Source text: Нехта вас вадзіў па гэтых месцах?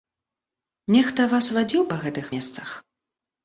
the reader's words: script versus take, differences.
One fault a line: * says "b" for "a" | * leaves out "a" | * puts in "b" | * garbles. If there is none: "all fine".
all fine